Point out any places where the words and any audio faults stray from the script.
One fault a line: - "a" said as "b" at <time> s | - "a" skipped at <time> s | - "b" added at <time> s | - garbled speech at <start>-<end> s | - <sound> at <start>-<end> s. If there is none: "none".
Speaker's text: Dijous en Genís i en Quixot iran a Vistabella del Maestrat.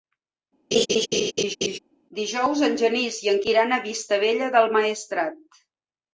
- laugh at 0.7-1.8 s
- "Quixot" skipped at 3.4 s